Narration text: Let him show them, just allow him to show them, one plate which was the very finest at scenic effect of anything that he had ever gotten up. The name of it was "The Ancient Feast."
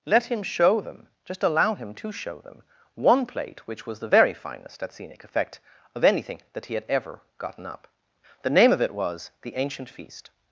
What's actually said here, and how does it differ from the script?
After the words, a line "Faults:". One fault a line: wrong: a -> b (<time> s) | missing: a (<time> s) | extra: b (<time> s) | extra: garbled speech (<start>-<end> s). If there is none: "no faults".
Let him show them, just allow him to show them, one plate which was the very finest at scenic effect of anything that he had ever gotten up. The name of it was "The Ancient Feast."
Faults:
no faults